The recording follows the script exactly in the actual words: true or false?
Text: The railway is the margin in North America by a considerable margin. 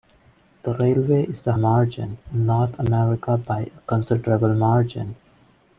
true